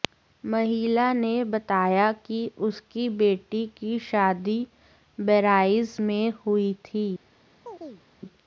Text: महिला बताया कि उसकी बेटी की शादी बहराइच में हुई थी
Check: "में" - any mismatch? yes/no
no